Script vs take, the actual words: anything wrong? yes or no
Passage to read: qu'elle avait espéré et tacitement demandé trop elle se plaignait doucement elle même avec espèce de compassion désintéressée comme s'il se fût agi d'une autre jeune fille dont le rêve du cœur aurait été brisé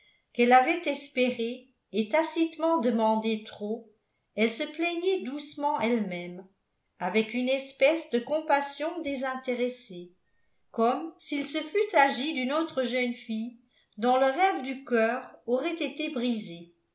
yes